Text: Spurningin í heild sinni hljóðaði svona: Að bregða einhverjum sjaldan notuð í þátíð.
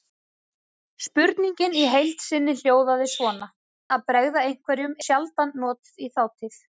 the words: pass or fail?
pass